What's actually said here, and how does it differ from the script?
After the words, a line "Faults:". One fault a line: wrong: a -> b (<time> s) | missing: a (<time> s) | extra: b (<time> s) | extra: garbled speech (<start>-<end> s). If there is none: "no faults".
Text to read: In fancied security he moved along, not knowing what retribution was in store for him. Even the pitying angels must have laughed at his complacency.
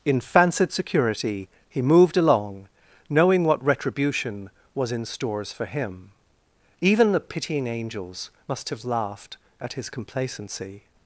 In fancied security he moved along, knowing what retribution was in stores for him. Even the pitying angels must have laughed at his complacency.
Faults:
missing: not (2.7 s)
wrong: store -> stores (5.0 s)